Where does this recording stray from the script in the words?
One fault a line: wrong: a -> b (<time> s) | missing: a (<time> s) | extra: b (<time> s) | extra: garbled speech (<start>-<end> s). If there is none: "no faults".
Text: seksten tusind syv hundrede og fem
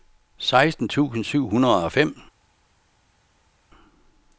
no faults